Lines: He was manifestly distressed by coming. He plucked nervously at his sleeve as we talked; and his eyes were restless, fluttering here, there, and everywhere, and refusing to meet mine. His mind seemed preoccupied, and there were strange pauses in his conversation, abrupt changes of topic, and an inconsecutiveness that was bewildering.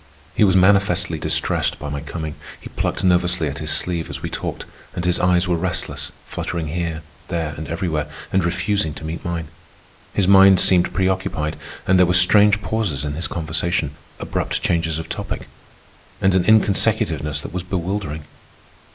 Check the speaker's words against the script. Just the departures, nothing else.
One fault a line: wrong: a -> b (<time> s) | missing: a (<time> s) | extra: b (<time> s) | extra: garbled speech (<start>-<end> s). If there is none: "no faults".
extra: my (1.9 s)